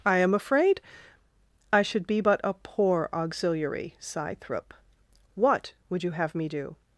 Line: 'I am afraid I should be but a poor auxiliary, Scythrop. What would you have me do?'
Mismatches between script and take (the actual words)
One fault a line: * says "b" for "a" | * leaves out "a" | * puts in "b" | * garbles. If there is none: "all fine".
all fine